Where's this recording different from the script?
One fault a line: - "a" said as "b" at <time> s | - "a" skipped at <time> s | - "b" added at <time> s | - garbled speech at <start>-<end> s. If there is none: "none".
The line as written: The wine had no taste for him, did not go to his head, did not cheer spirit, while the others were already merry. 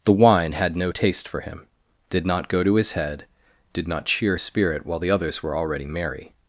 none